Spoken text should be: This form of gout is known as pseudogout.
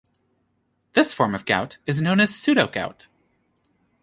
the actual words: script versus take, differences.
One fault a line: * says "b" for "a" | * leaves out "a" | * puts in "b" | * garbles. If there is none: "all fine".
all fine